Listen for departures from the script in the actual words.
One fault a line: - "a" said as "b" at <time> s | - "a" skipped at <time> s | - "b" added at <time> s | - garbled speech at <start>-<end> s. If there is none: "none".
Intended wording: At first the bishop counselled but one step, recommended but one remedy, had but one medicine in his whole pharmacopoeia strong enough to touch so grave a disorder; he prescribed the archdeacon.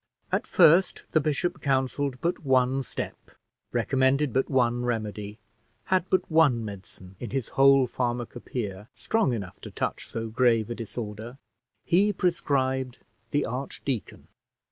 none